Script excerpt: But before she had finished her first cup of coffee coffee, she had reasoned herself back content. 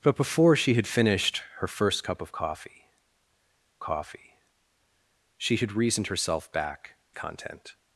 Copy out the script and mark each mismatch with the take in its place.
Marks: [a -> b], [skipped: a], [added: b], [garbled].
But before she had finished her first cup of coffee coffee, she had reasoned herself back content.